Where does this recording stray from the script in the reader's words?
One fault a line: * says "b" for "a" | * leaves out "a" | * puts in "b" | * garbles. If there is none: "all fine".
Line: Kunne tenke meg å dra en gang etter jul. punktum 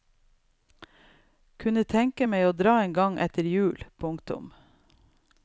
all fine